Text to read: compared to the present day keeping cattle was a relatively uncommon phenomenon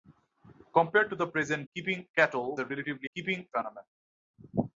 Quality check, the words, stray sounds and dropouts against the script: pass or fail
fail